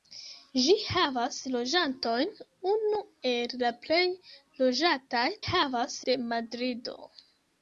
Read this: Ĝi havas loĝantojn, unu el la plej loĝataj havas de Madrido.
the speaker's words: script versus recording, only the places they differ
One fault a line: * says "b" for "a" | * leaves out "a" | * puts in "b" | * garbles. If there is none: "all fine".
all fine